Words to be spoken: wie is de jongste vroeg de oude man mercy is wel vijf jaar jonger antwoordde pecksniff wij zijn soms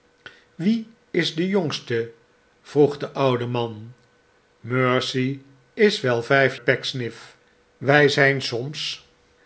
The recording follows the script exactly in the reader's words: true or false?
false